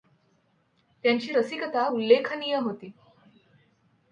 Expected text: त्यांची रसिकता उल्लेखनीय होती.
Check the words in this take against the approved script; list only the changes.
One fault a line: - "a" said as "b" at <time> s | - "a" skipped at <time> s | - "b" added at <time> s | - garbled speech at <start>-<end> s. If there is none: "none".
none